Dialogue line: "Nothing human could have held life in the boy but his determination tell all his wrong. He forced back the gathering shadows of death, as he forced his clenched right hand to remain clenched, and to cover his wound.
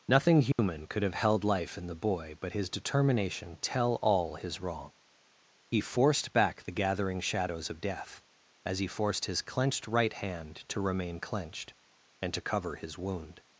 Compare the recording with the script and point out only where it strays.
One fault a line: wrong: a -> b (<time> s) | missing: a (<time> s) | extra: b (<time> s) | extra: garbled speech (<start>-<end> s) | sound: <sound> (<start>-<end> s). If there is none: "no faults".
sound: dropout (0.5-0.6 s)